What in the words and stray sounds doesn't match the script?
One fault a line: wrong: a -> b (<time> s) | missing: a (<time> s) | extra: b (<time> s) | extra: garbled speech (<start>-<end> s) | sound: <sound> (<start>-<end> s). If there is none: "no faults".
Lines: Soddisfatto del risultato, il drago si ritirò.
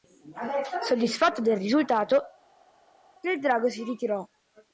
no faults